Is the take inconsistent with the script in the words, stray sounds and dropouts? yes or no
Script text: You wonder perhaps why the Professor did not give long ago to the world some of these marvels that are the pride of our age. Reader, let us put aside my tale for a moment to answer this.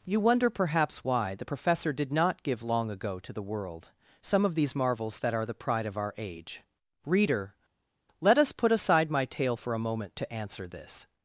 no